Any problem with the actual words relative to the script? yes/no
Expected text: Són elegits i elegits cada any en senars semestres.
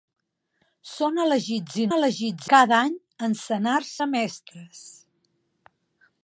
no